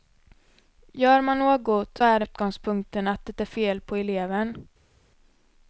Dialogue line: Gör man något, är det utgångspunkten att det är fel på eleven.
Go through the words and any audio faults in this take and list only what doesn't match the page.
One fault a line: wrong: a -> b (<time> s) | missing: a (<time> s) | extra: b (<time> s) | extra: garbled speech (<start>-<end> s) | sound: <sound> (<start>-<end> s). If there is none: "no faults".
no faults